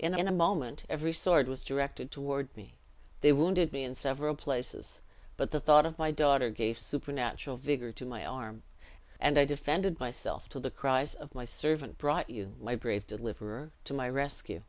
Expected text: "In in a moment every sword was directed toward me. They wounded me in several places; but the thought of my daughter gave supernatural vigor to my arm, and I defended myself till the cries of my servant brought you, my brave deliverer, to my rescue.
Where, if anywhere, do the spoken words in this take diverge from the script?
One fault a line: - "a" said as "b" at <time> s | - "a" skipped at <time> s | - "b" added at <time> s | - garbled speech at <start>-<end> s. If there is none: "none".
none